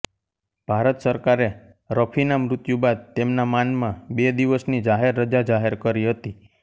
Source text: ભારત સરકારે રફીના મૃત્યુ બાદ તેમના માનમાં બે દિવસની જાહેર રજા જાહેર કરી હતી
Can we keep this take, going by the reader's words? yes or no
yes